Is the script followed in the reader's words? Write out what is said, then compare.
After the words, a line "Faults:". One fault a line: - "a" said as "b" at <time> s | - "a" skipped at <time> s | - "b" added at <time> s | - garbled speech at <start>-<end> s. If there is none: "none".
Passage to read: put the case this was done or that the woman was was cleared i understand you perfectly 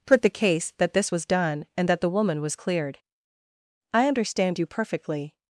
put the case that this was done and that the woman was cleared i understand you perfectly
Faults:
- "that" added at 0.8 s
- "or" said as "and" at 1.8 s
- "was" skipped at 2.5 s